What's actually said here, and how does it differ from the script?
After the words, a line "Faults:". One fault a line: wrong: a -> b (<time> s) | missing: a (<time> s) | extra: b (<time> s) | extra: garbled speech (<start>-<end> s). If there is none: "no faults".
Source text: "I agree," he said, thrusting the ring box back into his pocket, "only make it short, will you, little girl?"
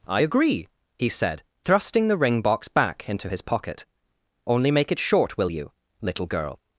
"I agree," he said, thrusting the ring box back into his pocket, "only make it short, will you, little girl?"
Faults:
no faults